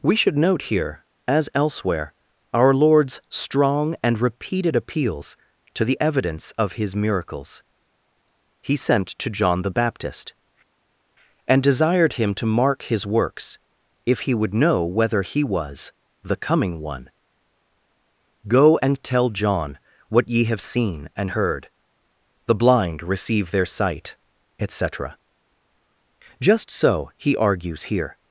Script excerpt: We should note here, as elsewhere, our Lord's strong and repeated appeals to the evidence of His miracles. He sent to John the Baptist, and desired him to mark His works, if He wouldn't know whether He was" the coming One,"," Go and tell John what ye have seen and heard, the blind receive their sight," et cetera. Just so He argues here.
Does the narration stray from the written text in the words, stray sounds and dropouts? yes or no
yes